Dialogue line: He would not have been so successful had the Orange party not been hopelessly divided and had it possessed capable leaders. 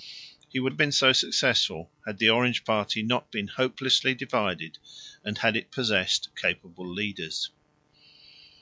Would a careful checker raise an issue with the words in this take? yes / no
yes